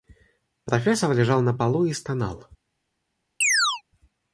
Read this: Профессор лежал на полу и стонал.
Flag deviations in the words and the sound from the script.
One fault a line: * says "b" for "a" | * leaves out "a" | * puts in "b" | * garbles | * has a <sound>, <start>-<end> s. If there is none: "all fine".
* has a chirp, 3.4-3.8 s